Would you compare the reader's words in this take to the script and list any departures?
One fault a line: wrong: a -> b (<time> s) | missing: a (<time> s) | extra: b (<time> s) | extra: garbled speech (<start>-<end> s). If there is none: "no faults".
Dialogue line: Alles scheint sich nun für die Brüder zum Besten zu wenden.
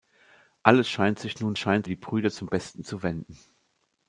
wrong: für -> scheint (1.6 s)